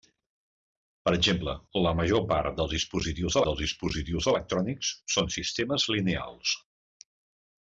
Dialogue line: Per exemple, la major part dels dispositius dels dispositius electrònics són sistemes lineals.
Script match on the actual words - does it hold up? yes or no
yes